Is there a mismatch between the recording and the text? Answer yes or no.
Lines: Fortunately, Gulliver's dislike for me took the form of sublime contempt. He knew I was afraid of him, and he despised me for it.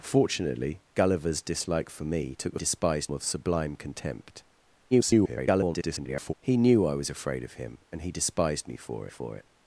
yes